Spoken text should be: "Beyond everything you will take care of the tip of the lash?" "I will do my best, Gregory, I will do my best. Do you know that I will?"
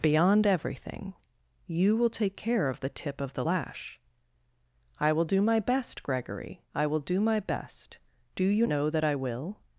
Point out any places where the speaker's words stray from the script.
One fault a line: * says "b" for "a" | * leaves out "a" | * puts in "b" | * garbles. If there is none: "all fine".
all fine